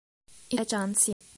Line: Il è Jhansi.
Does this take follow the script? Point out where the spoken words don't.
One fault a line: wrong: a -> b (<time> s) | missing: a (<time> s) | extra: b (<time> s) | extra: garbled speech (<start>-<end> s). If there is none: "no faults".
no faults